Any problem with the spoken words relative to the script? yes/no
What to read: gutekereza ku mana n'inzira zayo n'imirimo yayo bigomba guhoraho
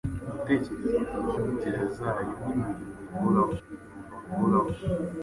yes